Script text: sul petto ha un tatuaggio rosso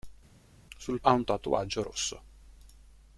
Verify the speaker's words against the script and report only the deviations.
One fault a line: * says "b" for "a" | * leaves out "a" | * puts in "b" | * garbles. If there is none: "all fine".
* leaves out "petto"